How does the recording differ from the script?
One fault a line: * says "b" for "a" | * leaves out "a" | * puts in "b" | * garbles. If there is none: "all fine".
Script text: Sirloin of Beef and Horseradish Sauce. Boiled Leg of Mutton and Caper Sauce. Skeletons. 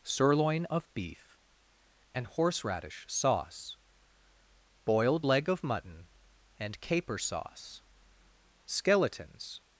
all fine